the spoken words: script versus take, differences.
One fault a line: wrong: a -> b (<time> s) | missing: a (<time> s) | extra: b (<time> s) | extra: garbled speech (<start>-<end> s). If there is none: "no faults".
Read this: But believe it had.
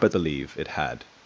no faults